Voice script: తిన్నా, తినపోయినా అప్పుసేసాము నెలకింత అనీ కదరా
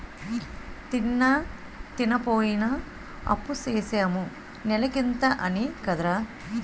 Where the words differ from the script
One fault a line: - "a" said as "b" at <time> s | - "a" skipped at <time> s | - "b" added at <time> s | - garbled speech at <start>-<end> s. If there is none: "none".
none